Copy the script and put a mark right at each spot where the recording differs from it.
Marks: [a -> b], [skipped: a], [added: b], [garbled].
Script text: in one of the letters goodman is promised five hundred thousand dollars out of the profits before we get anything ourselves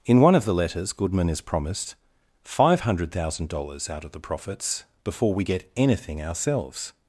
in one of the letters goodman is promised five hundred thousand dollars out of the profits before we get anything ourselves